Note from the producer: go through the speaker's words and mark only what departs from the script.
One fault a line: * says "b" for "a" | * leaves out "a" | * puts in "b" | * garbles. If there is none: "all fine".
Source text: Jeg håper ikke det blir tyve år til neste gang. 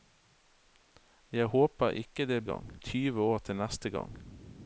* says "gang" for "blir"